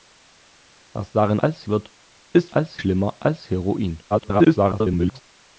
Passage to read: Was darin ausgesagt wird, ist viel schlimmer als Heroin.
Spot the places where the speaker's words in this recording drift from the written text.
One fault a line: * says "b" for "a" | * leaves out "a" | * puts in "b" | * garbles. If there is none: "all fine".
* says "als" for "ausgesagt"
* says "als" for "viel"
* garbles